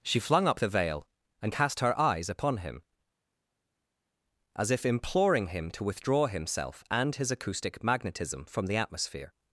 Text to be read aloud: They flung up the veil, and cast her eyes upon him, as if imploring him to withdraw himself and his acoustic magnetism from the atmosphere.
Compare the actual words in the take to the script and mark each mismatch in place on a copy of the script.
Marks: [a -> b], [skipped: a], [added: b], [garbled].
[They -> She] flung up the veil, and cast her eyes upon him, as if imploring him to withdraw himself and his acoustic magnetism from the atmosphere.